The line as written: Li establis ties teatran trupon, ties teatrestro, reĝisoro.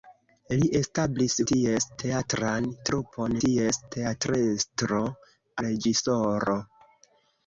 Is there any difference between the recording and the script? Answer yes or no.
no